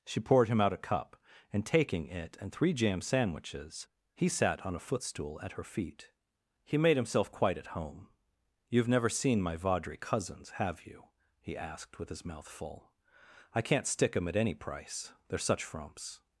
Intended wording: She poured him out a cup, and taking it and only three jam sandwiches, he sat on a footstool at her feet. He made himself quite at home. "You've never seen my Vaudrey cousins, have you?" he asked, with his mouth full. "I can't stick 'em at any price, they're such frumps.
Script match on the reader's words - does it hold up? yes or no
no